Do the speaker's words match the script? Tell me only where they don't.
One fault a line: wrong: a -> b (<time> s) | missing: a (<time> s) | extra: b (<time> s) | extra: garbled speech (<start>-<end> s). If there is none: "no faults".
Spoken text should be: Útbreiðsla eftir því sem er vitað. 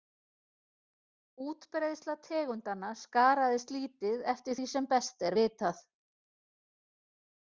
extra: tegundanna skaraðist lítið (2.3 s)
extra: best (4.9 s)